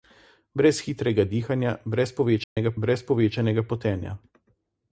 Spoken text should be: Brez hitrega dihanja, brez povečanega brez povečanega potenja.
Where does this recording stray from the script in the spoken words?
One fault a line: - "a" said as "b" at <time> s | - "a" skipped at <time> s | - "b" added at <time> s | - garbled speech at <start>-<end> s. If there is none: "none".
none